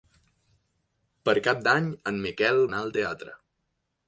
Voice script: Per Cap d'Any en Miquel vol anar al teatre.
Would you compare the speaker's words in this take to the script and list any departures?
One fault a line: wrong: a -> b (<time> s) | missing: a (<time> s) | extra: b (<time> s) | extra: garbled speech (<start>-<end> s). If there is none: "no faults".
missing: vol (2.7 s)